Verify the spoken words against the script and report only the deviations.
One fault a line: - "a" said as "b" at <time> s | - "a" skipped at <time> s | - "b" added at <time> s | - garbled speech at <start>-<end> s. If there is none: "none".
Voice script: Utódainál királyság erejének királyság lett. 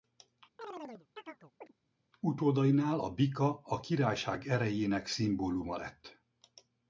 - "a bika a" added at 3.0 s
- "királyság" said as "szimbóluma" at 5.1 s